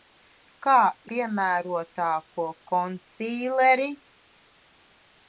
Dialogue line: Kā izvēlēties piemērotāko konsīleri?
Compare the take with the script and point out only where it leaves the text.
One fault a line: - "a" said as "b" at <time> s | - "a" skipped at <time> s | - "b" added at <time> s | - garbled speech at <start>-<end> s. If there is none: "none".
- "izvēlēties" skipped at 0.8 s